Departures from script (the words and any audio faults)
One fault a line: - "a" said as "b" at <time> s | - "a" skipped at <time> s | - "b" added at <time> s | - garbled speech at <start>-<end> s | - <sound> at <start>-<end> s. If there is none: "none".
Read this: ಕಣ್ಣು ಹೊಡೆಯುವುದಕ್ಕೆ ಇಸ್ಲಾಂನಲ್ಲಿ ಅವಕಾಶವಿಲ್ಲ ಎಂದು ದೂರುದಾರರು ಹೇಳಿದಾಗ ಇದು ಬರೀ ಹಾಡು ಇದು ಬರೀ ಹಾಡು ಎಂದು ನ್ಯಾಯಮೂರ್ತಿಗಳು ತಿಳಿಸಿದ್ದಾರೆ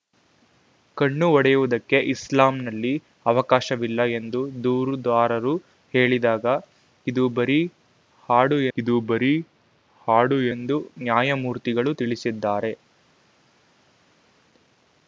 none